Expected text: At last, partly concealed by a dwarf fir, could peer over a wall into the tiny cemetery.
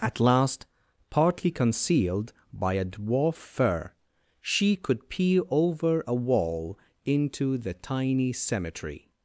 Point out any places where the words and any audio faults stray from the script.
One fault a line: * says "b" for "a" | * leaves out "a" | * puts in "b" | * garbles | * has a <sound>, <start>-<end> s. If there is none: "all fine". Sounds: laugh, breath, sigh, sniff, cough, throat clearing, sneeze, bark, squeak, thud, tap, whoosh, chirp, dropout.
* puts in "she"